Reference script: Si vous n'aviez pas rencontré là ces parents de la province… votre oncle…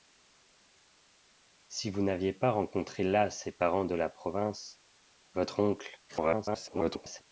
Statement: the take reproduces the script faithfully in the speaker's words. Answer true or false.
false